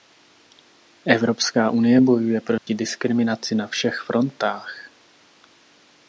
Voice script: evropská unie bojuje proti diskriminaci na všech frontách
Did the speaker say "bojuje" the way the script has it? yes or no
yes